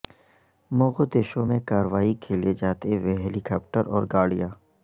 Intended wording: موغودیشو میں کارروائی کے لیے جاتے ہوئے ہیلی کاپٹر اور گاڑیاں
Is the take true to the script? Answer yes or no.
yes